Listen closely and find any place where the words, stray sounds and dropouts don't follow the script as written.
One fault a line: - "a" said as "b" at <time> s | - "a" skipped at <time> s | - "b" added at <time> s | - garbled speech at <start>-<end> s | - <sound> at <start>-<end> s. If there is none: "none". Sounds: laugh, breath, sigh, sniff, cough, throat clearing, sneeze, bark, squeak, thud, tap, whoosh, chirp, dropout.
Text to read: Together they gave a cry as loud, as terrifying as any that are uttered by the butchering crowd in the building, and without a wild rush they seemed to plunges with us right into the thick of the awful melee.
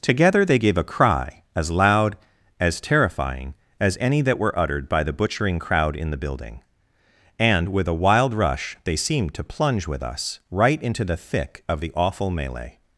- "are" said as "were" at 4.4 s
- "without" said as "with" at 7.7 s
- "plunges" said as "plunge" at 9.4 s